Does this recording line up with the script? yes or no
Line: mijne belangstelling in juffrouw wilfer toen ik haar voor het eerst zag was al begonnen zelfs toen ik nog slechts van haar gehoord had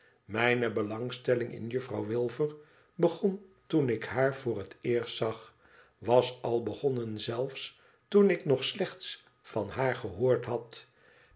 no